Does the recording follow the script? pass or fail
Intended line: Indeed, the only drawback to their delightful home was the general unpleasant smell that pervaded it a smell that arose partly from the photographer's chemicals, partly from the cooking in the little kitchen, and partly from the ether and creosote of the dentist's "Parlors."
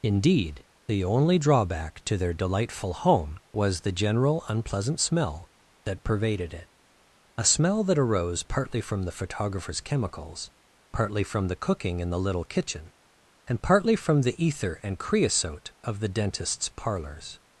pass